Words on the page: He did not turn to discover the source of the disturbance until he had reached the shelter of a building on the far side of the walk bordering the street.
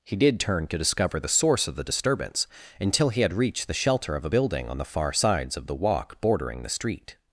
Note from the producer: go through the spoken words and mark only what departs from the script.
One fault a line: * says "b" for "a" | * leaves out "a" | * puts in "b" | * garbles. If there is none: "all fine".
* leaves out "not"
* says "sides" for "side"